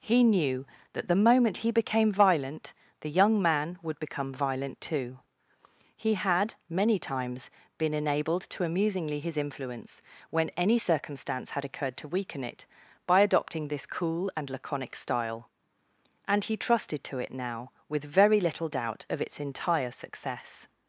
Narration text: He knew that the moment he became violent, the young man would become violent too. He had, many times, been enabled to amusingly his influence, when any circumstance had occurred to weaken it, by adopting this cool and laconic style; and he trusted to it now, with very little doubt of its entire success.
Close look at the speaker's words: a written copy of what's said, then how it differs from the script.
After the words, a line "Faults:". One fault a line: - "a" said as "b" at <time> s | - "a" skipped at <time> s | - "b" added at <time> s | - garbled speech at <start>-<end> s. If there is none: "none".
He knew that the moment he became violent, the young man would become violent too. He had, many times, been enabled to amusingly his influence, when any circumstance had occurred to weaken it, by adopting this cool and laconic style; and he trusted to it now, with very little doubt of its entire success.
Faults:
none